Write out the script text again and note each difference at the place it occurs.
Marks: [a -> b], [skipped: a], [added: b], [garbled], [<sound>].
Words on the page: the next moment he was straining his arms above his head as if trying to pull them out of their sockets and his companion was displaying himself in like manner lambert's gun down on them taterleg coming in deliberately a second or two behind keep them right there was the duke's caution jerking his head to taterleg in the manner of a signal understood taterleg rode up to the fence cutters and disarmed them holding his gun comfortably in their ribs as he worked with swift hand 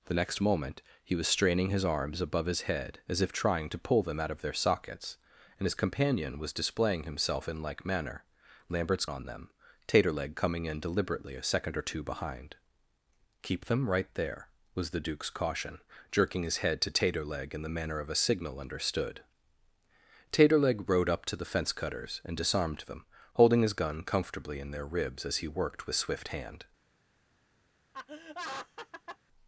the next moment he was straining his arms above his head as if trying to pull them out of their sockets and his companion was displaying himself in like manner lambert's [skipped: gun down] on them taterleg coming in deliberately a second or two behind keep them right there was the duke's caution jerking his head to taterleg in the manner of a signal understood taterleg rode up to the fence cutters and disarmed them holding his gun comfortably in their ribs as he worked with swift hand [laugh]